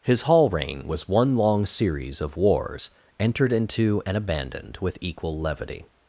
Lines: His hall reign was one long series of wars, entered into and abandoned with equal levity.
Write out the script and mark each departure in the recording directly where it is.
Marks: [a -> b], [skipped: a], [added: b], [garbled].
His hall reign was one long series of wars, entered into and abandoned with equal levity.